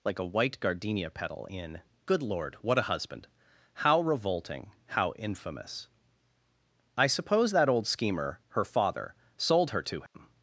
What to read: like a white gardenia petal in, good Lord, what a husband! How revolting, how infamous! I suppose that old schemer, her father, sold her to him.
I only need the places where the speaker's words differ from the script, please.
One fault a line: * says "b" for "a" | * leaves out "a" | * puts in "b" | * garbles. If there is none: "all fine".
all fine